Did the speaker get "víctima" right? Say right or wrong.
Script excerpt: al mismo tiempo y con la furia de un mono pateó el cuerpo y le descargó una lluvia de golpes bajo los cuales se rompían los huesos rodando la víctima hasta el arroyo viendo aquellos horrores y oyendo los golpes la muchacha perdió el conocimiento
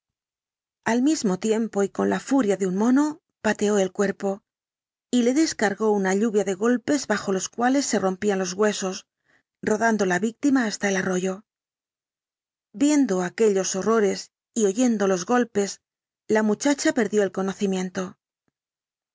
right